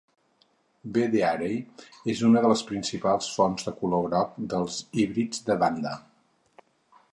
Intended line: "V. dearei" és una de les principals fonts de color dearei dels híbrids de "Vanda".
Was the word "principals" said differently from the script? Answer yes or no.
no